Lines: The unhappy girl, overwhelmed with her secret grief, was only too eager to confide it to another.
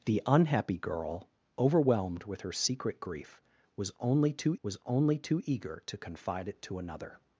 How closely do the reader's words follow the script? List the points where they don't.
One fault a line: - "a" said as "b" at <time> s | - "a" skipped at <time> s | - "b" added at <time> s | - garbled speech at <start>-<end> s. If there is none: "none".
- "was only too" added at 4.6 s